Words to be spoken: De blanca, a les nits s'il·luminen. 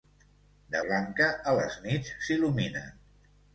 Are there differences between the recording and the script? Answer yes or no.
no